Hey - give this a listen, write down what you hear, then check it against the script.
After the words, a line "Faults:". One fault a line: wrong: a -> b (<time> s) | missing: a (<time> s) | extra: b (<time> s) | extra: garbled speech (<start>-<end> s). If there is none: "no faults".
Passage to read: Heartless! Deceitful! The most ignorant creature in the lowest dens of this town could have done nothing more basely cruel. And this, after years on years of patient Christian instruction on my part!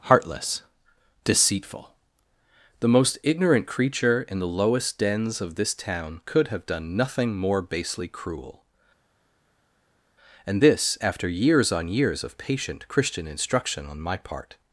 Heartless! Deceitful! The most ignorant creature in the lowest dens of this town could have done nothing more basely cruel. And this, after years on years of patient Christian instruction on my part!
Faults:
no faults